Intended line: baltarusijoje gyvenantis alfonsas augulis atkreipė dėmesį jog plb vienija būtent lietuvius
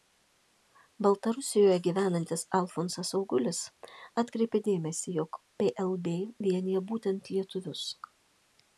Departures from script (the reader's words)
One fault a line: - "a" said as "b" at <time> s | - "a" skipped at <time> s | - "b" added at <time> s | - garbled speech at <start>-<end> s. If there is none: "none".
none